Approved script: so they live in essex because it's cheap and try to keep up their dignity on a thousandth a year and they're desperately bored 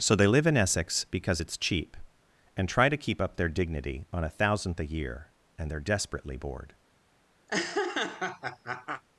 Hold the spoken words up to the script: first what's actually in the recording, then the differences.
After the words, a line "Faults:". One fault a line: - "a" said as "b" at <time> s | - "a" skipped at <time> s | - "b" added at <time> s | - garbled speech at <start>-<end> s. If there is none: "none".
so they live in essex because it's cheap and try to keep up their dignity on a thousandth a year and they're desperately bored
Faults:
none